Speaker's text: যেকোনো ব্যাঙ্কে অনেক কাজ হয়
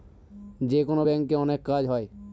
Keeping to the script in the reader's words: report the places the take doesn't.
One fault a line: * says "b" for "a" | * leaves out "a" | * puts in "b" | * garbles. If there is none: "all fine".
all fine